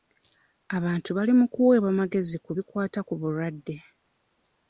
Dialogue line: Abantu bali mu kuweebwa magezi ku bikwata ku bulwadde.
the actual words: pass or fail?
pass